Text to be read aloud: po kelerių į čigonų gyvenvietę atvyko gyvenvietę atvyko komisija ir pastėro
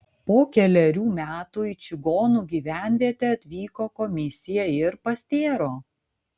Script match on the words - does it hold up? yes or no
no